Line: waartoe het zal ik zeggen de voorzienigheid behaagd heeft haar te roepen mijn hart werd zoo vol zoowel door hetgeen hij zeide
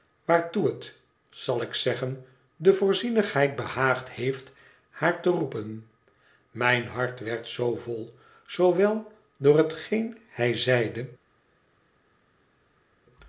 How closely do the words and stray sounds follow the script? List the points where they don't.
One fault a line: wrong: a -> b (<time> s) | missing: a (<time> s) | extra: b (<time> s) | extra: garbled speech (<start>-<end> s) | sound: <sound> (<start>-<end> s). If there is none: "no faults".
no faults